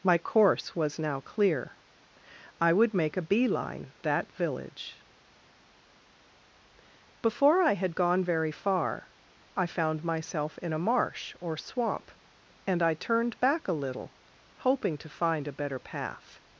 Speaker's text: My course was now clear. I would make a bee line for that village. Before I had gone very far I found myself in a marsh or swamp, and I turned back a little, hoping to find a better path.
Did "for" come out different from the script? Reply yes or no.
yes